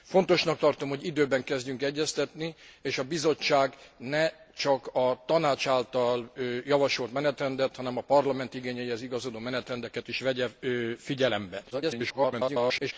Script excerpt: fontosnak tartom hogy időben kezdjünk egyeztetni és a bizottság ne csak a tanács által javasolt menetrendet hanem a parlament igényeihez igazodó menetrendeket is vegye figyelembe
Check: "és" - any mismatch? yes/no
no